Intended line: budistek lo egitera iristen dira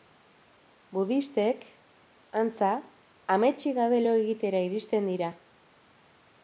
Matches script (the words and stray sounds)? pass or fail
fail